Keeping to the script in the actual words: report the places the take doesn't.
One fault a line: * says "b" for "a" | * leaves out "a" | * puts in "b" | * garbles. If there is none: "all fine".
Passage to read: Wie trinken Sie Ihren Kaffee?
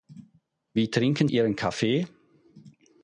* leaves out "Sie"